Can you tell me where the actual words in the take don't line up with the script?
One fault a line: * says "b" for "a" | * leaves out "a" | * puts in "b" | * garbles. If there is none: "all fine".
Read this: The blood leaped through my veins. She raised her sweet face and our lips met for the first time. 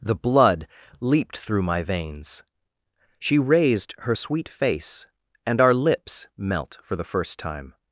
* says "melt" for "met"